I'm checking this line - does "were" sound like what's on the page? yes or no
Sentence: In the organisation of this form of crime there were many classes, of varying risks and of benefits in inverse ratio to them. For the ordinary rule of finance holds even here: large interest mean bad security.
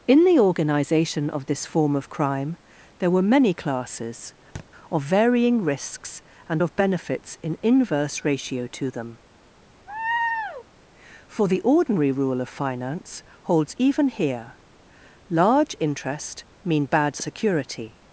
yes